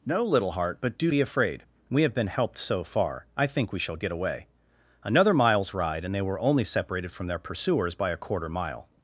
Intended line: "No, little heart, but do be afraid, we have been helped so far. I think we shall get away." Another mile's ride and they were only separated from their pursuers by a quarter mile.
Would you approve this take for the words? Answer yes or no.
yes